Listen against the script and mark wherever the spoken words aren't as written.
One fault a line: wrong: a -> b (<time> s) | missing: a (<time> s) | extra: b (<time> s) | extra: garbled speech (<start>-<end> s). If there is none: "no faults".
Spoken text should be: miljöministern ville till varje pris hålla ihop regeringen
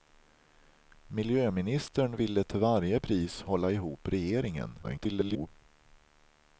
extra: garbled speech (4.8-5.5 s)